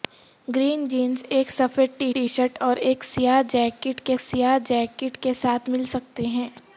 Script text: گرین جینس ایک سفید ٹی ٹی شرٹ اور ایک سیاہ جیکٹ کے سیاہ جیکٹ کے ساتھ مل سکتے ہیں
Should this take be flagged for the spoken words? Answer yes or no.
no